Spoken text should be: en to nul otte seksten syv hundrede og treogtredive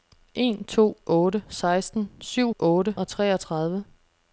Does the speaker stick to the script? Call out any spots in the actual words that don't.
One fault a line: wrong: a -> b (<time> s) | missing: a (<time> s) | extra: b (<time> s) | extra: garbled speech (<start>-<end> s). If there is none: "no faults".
missing: nul (1.0 s)
wrong: hundrede -> otte (2.6 s)